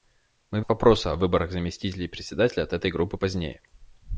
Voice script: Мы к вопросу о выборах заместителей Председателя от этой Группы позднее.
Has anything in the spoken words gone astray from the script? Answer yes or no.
no